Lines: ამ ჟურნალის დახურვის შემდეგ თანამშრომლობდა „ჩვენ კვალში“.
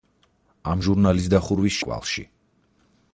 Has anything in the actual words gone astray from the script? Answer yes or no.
yes